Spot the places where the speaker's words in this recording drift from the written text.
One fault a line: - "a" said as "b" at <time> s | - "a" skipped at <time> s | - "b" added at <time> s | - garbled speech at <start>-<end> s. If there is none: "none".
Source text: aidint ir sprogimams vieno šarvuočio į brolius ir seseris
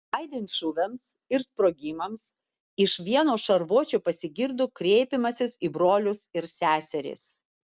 - "šūviams" added at 0.5 s
- "iš" added at 2.9 s
- "pasigirdo kreipimasis" added at 4.1 s